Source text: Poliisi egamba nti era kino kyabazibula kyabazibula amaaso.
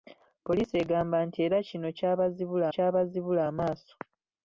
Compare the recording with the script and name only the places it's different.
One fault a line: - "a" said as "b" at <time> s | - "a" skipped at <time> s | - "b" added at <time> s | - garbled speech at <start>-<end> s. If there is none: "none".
none